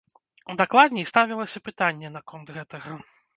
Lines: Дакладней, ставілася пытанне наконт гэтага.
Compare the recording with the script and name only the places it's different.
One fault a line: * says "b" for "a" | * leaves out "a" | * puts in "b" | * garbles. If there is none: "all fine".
all fine